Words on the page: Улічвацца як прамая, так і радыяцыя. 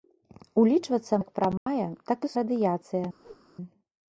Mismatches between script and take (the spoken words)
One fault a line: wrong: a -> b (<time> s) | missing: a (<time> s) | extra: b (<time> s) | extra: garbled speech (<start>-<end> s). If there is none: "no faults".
no faults